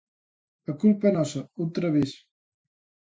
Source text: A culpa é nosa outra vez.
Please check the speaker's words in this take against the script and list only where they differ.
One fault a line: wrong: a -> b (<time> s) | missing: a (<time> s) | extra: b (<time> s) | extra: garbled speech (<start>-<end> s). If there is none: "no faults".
no faults